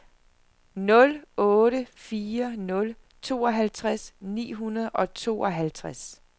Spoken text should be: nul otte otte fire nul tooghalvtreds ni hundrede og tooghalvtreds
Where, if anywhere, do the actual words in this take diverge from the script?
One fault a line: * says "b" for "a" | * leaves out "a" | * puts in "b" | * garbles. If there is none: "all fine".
* leaves out "otte"